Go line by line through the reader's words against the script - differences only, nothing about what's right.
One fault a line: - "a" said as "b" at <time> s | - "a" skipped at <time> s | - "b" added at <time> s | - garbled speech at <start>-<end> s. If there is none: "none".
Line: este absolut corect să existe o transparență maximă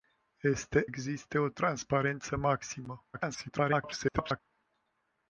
- "absolut corect să" skipped at 0.9 s
- garbled speech at 3.1-4.4 s